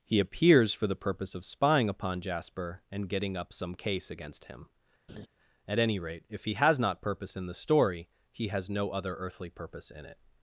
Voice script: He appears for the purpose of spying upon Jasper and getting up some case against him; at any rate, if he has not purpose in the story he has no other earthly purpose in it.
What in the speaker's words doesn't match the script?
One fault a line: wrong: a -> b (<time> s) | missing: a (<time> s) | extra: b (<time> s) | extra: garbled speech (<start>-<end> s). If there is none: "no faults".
no faults